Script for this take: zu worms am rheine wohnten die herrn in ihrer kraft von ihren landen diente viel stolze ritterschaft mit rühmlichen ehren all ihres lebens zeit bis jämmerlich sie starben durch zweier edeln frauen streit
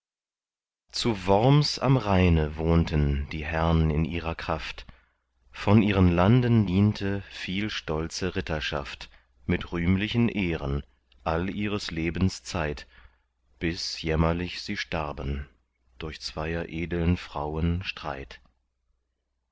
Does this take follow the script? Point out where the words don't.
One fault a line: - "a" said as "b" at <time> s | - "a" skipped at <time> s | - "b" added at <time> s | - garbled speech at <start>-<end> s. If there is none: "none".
none